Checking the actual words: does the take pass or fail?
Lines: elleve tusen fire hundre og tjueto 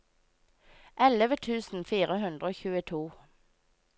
pass